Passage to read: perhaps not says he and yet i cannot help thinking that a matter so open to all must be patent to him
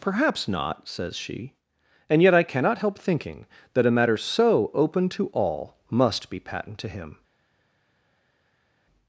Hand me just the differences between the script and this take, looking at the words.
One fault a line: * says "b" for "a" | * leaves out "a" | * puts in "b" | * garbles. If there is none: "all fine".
* says "she" for "he"